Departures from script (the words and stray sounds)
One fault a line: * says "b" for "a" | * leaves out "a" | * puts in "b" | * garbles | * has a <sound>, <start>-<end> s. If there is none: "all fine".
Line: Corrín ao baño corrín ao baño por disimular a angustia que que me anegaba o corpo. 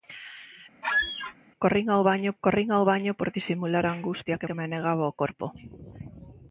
* has a squeak, 0.8-1.3 s